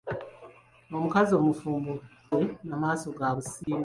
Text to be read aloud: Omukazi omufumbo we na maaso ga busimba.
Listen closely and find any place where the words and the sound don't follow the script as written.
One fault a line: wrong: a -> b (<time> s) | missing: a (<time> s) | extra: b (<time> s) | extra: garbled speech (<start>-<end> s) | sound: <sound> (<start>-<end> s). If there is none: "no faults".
sound: dropout (3.6-3.7 s)